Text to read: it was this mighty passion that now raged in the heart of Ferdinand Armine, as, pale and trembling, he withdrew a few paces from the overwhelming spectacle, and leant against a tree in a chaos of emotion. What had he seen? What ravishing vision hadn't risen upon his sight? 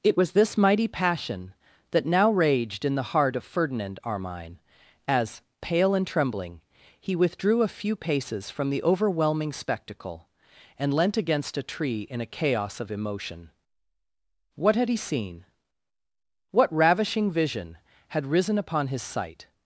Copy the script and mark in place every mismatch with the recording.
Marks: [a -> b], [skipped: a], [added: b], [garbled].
it was this mighty passion that now raged in the heart of Ferdinand Armine, as, pale and trembling, he withdrew a few paces from the overwhelming spectacle, and leant against a tree in a chaos of emotion. What had he seen? What ravishing vision [hadn't -> had] risen upon his sight?